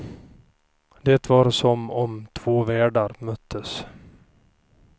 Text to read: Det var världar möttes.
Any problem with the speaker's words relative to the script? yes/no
yes